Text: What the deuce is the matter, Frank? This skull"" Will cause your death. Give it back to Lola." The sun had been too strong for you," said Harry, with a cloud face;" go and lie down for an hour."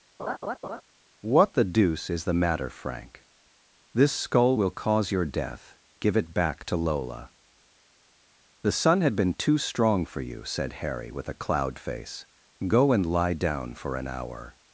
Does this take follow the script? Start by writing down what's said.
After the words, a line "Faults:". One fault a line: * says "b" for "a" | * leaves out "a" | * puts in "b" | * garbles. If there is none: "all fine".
What the deuce is the matter, Frank? This skull"" Will cause your death. Give it back to Lola." The sun had been too strong for you," said Harry, with a cloud face;" go and lie down for an hour."
Faults:
all fine